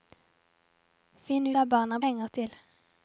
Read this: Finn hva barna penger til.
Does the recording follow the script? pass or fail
pass